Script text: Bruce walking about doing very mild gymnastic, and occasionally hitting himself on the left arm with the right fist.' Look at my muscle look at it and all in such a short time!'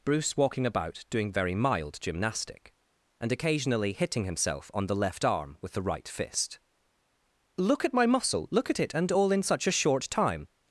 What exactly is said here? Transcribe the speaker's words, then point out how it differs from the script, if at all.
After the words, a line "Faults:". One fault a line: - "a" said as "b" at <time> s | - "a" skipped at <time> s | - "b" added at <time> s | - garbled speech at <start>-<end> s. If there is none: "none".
Bruce walking about doing very mild gymnastic, and occasionally hitting himself on the left arm with the right fist.' Look at my muscle look at it and all in such a short time!'
Faults:
none